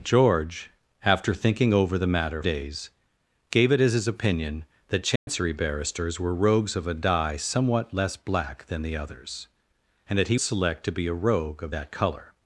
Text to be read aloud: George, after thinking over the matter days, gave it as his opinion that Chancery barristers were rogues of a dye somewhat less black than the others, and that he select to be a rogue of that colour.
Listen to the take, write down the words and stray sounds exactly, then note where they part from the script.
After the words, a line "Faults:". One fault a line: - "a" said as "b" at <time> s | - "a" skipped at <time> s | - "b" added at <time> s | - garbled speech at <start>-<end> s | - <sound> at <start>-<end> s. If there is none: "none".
George, after thinking over the matter days, gave it as his opinion that Chancery barristers were rogues of a dye somewhat less black than the others, and that he select to be a rogue of that colour.
Faults:
- dropout at 5.2-5.3 s